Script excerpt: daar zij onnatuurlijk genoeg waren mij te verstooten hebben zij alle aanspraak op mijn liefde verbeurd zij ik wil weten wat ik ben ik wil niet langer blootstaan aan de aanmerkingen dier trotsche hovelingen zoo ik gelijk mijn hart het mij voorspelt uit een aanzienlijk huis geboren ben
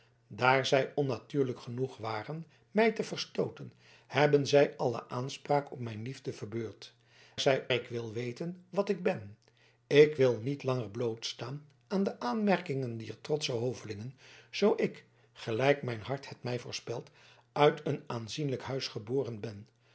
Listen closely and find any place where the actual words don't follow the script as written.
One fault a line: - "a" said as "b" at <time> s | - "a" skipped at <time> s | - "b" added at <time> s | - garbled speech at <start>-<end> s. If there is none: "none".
none